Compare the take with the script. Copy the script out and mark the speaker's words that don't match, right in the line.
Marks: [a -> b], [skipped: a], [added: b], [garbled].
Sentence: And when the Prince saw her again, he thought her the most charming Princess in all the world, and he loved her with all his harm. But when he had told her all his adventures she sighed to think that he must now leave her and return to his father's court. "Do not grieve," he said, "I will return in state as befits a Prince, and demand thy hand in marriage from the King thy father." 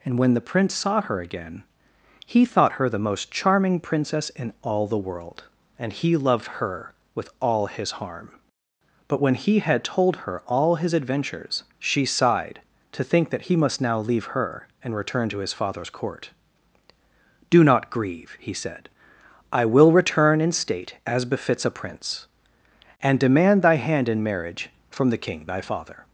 And when the Prince saw her again, he thought her the most charming Princess in all the world, and he loved her with all his harm. But when he had told her all his adventures she sighed to think that he must now leave her and return to his father's court. "Do not grieve," he said, "I will return in state as befits a Prince, and demand thy hand in marriage from the King thy father."